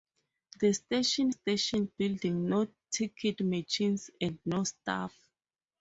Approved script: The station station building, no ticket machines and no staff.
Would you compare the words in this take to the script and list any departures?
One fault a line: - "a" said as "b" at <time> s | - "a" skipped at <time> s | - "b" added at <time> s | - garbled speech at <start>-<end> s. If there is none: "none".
none